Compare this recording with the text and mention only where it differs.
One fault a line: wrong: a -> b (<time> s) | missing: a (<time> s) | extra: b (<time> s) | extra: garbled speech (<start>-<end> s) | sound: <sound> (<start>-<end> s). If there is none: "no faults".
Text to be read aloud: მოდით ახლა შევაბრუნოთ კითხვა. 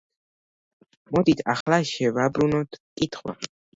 sound: dropout (1.6-1.7 s)